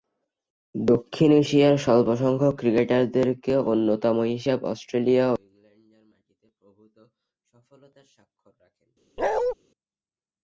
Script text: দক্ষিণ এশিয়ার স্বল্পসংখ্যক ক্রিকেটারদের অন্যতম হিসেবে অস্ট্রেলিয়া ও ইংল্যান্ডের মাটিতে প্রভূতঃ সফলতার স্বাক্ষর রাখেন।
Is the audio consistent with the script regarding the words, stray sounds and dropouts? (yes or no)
no